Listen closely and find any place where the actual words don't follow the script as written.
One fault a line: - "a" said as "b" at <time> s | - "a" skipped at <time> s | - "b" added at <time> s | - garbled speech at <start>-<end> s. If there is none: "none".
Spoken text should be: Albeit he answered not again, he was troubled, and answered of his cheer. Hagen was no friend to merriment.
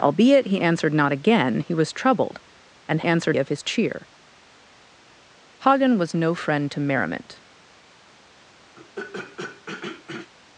none